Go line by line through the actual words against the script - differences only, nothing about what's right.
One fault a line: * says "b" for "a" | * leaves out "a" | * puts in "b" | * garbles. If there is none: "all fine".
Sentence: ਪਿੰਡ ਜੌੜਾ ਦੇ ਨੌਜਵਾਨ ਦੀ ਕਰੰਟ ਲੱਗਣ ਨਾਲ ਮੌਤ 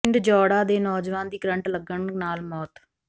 all fine